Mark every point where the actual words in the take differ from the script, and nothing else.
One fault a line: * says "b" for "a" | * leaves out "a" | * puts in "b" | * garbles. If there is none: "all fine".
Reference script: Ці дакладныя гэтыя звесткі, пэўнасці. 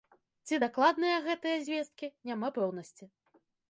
* puts in "няма"